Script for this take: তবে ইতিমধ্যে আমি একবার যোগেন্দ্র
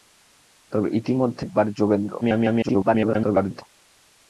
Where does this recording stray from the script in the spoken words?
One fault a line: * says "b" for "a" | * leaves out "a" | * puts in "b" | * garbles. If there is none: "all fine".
* leaves out "আমি"
* garbles